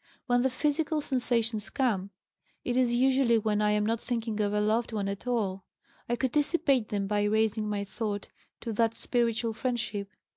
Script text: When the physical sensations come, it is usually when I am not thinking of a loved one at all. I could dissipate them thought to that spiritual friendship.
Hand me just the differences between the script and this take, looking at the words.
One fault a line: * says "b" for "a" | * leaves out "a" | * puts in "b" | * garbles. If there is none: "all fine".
* puts in "by raising my"